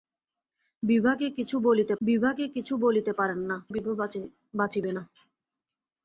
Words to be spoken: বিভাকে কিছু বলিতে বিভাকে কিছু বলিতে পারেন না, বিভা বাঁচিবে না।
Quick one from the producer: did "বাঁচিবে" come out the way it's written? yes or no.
yes